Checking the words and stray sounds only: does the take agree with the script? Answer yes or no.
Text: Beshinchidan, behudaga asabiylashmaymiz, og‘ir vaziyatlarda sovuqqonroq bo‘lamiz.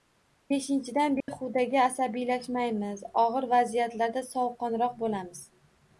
no